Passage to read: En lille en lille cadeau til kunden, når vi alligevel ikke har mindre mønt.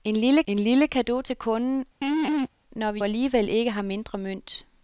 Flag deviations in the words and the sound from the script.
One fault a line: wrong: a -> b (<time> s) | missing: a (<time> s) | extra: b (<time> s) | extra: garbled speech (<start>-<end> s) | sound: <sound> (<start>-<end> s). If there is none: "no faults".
sound: laugh (2.0-2.5 s)